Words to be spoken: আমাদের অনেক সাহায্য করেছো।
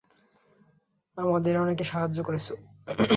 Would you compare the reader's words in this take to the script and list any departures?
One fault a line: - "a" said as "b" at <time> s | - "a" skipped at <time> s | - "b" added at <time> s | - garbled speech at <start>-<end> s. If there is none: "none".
none